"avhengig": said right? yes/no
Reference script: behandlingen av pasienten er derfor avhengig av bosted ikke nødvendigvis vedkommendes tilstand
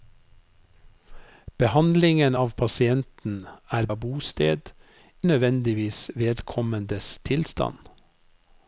no